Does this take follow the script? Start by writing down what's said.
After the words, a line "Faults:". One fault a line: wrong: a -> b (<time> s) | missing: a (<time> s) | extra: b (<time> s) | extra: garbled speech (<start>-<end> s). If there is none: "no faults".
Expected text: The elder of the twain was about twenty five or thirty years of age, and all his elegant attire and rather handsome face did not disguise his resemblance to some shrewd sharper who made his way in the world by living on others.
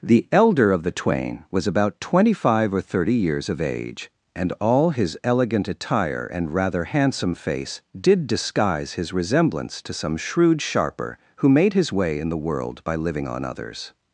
The elder of the twain was about twenty five or thirty years of age, and all his elegant attire and rather handsome face did disguise his resemblance to some shrewd sharper who made his way in the world by living on others.
Faults:
missing: not (8.2 s)